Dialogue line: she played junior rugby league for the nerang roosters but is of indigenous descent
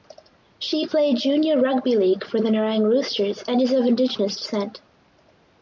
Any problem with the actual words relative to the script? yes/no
yes